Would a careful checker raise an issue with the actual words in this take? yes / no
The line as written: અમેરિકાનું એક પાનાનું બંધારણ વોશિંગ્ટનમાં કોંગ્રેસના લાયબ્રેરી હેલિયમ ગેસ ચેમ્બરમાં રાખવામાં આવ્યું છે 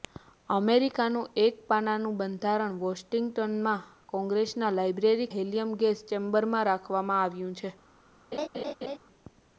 no